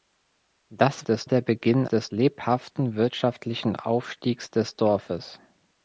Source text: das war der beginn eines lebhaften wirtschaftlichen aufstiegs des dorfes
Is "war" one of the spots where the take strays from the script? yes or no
yes